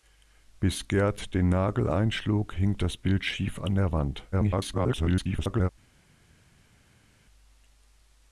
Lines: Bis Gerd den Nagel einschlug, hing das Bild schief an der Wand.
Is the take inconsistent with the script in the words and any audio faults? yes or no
yes